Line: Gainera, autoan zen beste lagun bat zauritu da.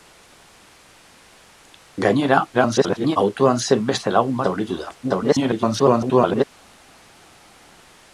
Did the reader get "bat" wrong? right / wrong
wrong